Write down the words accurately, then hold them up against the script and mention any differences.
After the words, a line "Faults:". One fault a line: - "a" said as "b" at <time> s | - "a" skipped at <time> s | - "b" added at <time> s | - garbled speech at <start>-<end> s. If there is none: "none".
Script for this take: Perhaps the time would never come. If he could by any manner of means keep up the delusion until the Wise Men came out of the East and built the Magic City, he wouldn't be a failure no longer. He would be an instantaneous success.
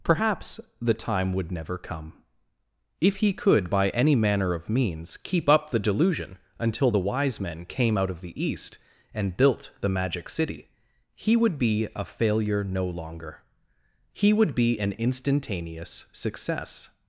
Perhaps the time would never come. If he could by any manner of means keep up the delusion until the Wise Men came out of the East and built the Magic City, he would be a failure no longer. He would be an instantaneous success.
Faults:
- "wouldn't" said as "would" at 11.4 s